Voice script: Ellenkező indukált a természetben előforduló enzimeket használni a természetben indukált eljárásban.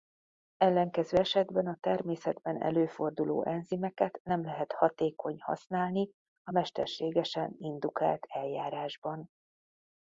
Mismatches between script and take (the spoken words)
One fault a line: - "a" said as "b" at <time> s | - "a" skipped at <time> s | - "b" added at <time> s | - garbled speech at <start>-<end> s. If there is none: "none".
- "indukált" said as "esetben" at 1.1 s
- "nem lehet hatékony" added at 4.2 s
- "természetben" said as "mesterségesen" at 6.5 s